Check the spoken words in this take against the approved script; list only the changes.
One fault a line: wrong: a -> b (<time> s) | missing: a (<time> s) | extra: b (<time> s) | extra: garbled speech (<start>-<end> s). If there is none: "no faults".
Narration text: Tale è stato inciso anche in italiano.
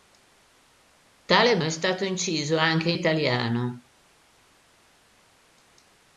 no faults